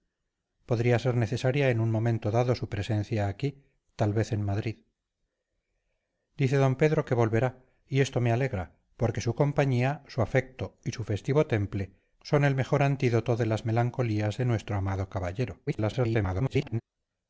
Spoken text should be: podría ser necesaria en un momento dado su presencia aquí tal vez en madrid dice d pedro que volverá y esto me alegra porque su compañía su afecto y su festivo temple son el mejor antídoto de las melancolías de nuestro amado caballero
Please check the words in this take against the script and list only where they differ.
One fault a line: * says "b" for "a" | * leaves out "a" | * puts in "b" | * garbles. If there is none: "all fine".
* garbles